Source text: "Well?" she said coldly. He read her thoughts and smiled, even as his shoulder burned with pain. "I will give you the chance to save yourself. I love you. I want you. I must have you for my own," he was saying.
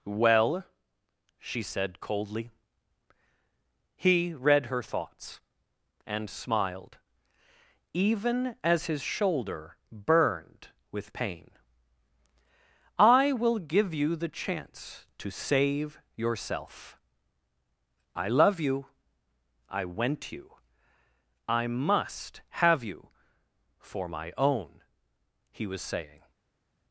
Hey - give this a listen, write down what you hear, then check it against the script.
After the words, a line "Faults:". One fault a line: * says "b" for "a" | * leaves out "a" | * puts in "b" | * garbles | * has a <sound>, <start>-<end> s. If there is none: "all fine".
"Well?" she said coldly. He read her thoughts and smiled, even as his shoulder burned with pain. "I will give you the chance to save yourself. I love you. I went you. I must have you for my own," he was saying.
Faults:
* says "went" for "want"